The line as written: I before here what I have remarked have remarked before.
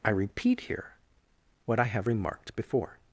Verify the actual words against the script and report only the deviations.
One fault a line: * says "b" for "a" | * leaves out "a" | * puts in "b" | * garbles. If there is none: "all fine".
* says "repeat" for "before"
* leaves out "have remarked"